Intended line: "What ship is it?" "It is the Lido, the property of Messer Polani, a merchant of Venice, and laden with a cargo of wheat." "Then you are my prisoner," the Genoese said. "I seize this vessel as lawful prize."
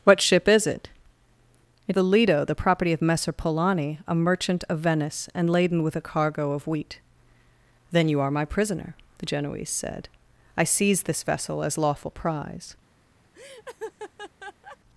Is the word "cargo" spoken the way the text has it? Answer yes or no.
yes